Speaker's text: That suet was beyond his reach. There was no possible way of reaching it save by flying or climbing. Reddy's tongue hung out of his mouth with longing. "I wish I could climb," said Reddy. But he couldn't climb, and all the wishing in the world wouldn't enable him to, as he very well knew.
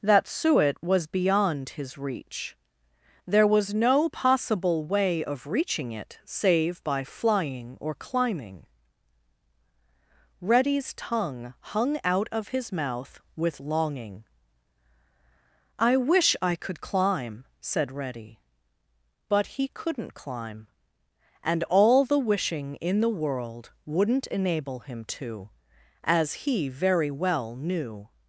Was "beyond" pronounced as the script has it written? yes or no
yes